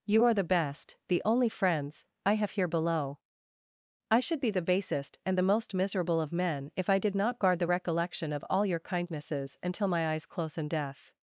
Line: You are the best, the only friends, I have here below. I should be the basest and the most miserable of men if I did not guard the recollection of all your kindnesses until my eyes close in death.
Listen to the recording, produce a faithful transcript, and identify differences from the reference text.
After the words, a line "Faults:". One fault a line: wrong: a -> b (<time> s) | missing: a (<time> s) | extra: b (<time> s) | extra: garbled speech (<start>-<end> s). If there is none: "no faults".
You are the best, the only friends, I have here below. I should be the basest and the most miserable of men if I did not guard the recollection of all your kindnesses until my eyes close in death.
Faults:
no faults